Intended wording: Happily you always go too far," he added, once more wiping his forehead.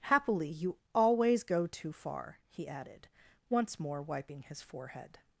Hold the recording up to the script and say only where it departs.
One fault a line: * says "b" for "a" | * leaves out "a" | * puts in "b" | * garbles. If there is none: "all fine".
all fine